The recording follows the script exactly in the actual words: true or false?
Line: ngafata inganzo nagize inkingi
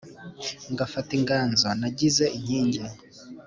true